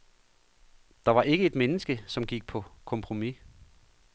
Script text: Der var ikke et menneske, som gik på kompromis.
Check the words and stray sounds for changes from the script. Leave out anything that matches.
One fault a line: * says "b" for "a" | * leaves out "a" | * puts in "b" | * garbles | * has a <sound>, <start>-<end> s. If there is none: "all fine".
all fine